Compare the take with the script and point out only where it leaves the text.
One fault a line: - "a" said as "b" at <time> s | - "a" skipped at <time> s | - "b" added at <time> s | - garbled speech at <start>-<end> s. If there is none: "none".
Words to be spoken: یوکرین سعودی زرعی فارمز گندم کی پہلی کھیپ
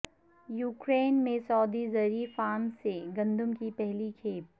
- "میں" added at 1.2 s
- "سے" added at 2.8 s